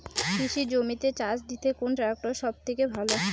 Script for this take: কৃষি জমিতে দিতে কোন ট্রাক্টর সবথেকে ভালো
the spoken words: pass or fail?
fail